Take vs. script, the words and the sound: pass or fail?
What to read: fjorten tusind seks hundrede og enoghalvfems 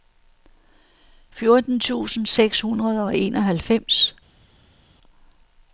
pass